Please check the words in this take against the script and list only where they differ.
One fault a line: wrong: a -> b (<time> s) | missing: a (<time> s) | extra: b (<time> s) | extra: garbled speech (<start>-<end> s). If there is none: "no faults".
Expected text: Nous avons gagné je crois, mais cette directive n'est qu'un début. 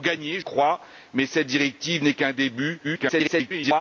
missing: je (0.4 s)
extra: garbled speech (2.8-3.8 s)